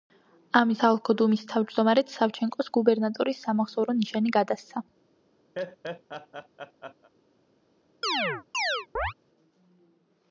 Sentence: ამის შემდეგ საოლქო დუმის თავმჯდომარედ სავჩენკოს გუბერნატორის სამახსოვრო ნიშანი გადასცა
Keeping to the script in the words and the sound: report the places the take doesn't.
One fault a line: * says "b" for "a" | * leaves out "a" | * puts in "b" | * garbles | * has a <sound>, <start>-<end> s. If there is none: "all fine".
* leaves out "შემდეგ"
* has a laugh, 5.5-7.1 s
* has a chirp, 8.0-9.1 s